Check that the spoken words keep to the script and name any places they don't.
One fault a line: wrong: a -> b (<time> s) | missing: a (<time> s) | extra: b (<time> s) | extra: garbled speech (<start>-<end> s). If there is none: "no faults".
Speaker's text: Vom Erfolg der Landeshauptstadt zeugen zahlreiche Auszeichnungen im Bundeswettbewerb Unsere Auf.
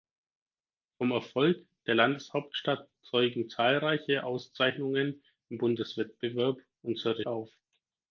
no faults